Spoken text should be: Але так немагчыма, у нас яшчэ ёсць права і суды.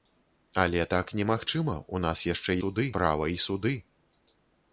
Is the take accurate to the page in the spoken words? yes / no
no